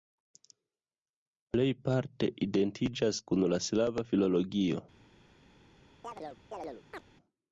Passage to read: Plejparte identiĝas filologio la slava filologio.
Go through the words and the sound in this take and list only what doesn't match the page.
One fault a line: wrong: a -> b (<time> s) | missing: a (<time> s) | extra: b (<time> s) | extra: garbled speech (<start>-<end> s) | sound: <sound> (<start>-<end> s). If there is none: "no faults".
wrong: filologio -> kun (3.3 s)
sound: chirp (6.0-7.0 s)